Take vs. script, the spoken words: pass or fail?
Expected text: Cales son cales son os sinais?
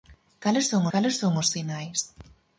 pass